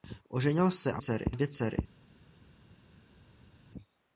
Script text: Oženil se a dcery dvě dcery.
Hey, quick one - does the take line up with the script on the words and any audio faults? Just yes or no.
yes